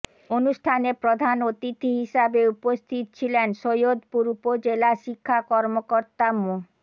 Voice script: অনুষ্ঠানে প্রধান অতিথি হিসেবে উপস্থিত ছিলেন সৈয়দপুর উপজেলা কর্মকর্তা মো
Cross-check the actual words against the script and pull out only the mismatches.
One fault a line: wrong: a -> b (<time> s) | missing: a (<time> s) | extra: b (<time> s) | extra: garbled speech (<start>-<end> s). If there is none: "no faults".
extra: শিক্ষা (5.0 s)